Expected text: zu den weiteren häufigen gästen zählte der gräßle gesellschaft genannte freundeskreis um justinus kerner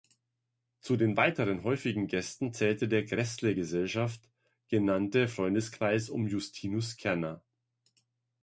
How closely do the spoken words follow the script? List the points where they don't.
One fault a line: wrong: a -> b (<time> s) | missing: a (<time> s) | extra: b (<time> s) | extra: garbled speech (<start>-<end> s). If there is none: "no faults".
no faults